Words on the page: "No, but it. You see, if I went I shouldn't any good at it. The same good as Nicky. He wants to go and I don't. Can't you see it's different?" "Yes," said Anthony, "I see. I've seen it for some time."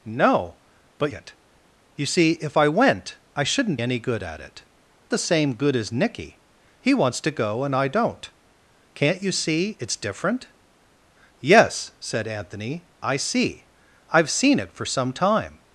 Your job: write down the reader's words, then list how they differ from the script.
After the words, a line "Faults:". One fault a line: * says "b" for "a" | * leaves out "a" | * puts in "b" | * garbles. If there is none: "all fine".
"No, but it. You see, if I went I shouldn't any good at it. The same good as Nicky. He wants to go and I don't. Can't you see it's different?" "Yes," said Anthony, "I see. I've seen it for some time."
Faults:
all fine